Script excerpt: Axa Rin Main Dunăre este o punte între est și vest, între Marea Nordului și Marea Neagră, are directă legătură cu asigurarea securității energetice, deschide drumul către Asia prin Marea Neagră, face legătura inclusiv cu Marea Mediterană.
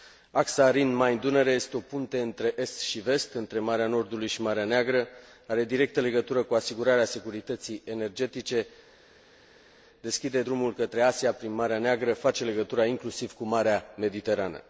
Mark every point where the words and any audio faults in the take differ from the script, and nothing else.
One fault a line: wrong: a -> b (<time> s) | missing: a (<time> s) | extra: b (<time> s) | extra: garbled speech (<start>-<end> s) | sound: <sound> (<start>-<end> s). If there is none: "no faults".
no faults